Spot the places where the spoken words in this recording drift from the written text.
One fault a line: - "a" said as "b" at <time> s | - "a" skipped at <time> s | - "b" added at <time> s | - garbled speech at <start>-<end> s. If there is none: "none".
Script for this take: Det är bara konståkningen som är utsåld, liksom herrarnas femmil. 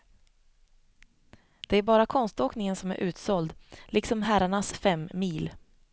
none